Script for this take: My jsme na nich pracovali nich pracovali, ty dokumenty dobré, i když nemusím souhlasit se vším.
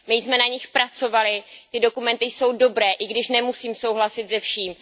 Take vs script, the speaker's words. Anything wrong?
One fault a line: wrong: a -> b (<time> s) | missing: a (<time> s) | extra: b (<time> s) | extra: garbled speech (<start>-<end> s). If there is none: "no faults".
missing: nich pracovali (1.4 s)
extra: jsou (2.2 s)